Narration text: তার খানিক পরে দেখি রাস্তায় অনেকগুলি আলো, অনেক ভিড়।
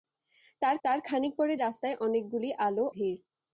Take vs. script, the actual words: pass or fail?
fail